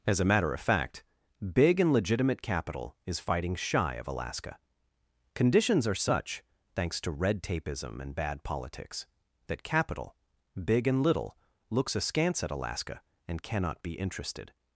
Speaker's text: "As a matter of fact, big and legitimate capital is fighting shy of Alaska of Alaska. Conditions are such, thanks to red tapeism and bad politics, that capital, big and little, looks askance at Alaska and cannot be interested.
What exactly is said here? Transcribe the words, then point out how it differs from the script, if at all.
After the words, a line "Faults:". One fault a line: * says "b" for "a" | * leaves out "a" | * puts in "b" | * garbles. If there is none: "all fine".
"As a matter of fact, big and legitimate capital is fighting shy of Alaska. Conditions are such, thanks to red tapeism and bad politics, that capital, big and little, looks askance at Alaska and cannot be interested.
Faults:
* leaves out "of Alaska"